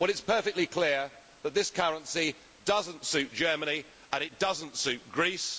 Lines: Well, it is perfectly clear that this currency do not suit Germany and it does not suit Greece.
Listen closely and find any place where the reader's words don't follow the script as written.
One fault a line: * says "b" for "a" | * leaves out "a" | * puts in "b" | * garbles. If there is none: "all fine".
* says "does" for "do"